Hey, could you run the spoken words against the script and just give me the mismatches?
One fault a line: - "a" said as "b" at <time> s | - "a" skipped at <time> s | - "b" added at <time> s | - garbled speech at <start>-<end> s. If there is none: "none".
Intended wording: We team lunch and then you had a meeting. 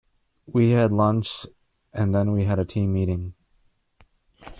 - "team" said as "had" at 0.7 s
- "you" said as "we" at 2.3 s
- "team" added at 2.6 s